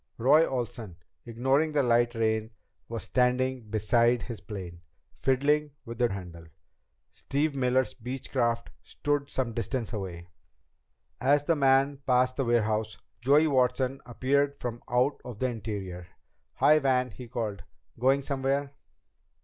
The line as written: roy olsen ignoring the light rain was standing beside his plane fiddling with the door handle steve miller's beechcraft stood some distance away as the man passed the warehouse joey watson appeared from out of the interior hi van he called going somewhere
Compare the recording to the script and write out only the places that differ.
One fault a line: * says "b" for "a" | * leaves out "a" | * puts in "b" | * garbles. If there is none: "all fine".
* leaves out "door"